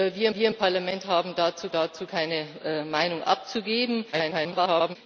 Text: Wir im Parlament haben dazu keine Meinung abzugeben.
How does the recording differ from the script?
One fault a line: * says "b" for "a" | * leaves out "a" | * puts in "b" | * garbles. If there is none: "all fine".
* puts in "wir"
* puts in "dazu"
* garbles